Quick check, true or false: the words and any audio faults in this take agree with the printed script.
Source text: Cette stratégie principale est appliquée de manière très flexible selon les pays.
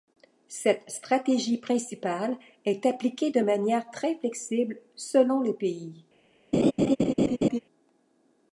false